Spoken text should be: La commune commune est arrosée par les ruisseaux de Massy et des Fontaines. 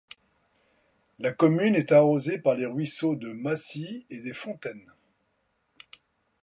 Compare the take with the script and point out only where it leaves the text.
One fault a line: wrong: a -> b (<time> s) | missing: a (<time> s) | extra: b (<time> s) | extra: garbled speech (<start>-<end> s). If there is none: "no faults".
missing: commune (1.8 s)